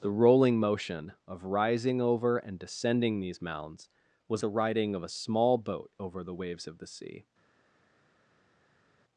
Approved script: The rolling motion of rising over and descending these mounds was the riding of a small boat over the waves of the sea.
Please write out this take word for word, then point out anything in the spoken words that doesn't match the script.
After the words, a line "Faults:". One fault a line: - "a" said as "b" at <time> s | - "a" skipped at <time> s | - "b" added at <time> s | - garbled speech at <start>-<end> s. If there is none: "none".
The rolling motion of rising over and descending these mounds was the riding of a small boat over the waves of the sea.
Faults:
none